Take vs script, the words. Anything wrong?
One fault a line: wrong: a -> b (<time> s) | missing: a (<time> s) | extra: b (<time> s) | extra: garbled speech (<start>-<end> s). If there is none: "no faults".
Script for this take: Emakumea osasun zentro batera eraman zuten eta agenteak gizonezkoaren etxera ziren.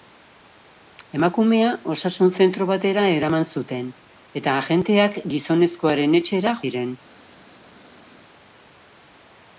no faults